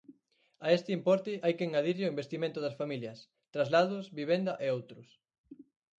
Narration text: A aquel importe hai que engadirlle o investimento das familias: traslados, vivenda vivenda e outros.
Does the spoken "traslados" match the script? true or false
true